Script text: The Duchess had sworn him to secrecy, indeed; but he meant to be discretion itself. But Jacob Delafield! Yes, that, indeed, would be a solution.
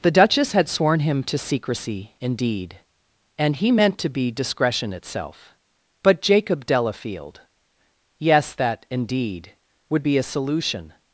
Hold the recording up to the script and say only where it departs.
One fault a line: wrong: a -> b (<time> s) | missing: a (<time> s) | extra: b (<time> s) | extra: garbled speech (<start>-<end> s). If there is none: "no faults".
wrong: but -> and (3.4 s)